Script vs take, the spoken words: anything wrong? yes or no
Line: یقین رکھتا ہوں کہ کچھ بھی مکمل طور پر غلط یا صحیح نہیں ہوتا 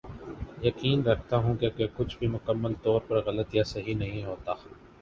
yes